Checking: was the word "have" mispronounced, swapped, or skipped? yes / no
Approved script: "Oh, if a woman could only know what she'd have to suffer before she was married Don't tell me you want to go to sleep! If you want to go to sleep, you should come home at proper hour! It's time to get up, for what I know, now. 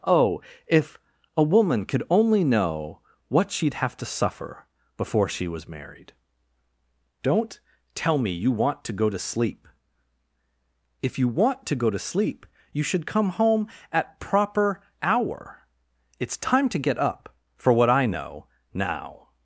no